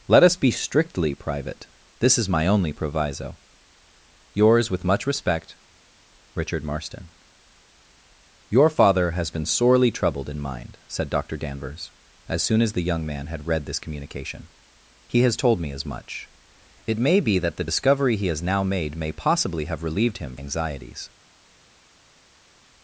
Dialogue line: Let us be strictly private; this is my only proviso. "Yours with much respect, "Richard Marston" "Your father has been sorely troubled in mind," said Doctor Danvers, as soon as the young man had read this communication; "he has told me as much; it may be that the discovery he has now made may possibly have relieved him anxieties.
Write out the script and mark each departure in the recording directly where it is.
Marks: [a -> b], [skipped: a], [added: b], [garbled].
Let us be strictly private; this is my only proviso. "Yours with much respect, "Richard Marston" "Your father has been sorely troubled in mind," said Doctor Danvers, as soon as the young man had read this communication; "he has told me as much; it may be that the discovery he has now made may possibly have relieved him anxieties.